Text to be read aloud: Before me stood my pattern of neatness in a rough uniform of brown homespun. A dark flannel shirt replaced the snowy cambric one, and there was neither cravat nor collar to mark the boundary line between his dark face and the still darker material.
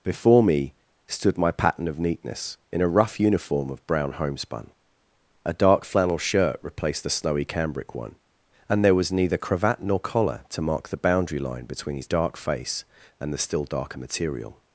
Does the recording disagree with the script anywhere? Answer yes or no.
no